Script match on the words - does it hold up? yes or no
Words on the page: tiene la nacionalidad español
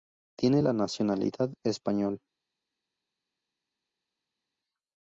yes